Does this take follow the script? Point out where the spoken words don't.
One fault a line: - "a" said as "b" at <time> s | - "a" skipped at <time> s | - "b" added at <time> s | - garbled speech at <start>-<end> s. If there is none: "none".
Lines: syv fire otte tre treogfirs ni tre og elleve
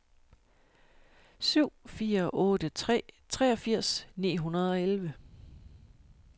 - "tre" said as "hundrede" at 4.4 s